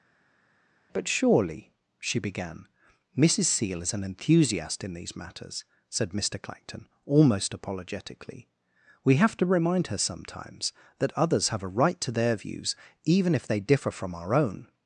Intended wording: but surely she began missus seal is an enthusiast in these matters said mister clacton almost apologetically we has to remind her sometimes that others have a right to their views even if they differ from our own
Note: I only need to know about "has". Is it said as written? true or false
false